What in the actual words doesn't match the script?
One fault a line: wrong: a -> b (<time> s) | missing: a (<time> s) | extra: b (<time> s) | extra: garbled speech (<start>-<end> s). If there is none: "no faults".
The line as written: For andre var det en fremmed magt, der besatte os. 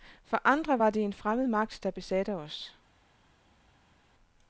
no faults